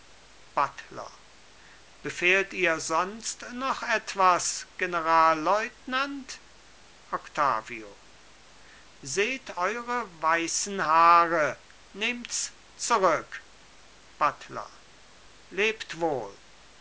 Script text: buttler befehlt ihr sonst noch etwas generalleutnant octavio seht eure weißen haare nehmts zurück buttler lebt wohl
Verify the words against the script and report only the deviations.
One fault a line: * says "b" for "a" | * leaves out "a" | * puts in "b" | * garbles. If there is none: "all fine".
all fine